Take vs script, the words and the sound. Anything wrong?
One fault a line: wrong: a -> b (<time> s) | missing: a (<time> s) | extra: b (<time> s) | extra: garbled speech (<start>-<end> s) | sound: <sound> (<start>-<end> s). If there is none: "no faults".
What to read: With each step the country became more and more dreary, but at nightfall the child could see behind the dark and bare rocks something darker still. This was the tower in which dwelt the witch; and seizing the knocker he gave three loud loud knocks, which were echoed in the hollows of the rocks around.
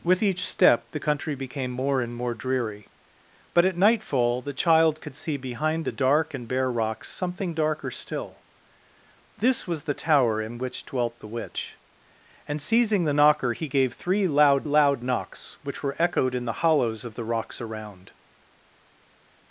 no faults